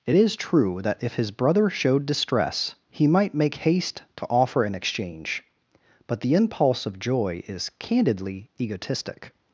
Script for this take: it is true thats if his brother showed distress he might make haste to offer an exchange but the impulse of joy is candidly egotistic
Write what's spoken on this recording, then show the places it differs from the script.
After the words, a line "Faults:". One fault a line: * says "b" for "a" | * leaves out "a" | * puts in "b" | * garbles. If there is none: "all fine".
it is true that if his brother showed distress he might make haste to offer an exchange but the impulse of joy is candidly egotistic
Faults:
* says "that" for "thats"